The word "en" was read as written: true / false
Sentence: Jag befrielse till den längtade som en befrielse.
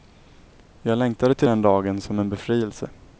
true